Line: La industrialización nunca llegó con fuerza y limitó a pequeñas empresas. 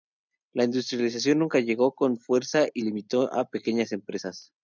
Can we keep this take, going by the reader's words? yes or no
yes